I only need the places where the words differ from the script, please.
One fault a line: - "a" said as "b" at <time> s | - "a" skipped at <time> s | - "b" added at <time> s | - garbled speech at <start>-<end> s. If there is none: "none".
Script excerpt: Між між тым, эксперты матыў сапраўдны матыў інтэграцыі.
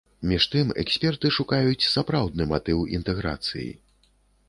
- "між" skipped at 0.5 s
- "матыў" said as "шукаюць" at 1.4 s